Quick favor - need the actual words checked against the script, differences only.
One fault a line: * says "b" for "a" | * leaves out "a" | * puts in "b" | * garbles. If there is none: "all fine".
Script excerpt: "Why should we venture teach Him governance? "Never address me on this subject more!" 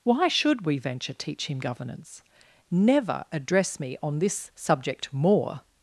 all fine